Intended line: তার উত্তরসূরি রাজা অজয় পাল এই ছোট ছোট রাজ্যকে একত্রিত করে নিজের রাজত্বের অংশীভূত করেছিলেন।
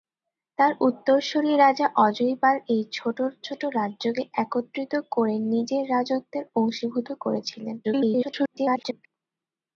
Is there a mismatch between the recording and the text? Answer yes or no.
yes